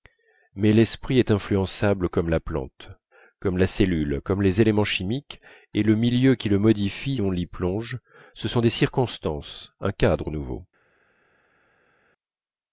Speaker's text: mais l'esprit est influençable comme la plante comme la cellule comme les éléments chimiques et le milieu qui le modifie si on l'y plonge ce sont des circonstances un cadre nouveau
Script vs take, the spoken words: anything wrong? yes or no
yes